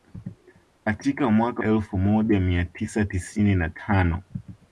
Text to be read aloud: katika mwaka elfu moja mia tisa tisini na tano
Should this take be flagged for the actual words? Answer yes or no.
no